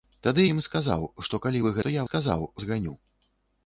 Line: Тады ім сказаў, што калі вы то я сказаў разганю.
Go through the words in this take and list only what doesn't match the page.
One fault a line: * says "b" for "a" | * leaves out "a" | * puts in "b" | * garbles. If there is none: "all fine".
all fine